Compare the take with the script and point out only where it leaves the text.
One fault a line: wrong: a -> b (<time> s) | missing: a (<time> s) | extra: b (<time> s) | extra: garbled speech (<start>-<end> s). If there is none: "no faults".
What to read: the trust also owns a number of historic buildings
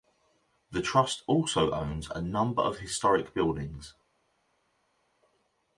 no faults